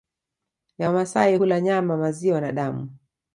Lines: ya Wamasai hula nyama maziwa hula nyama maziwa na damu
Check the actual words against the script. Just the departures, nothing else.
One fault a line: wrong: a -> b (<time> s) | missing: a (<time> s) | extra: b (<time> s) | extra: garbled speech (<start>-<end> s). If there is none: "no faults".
missing: hula nyama maziwa (2.4 s)